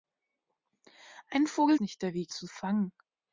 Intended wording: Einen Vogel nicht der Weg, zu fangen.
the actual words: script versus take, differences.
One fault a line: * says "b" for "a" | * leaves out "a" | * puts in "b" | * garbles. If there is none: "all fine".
all fine